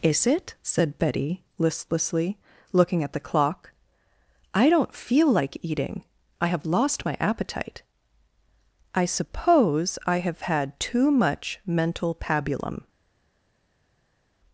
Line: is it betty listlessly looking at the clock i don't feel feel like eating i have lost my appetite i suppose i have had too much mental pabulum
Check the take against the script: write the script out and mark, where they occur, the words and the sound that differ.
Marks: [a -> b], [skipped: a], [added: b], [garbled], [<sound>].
is it [added: said] betty listlessly looking at the clock i don't feel [skipped: feel] like eating i have lost my appetite i suppose i have had too much mental pabulum